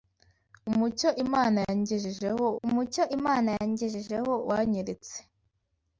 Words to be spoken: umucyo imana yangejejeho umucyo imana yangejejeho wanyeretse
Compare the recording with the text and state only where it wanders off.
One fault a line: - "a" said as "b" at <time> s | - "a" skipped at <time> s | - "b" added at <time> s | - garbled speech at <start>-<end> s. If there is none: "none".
none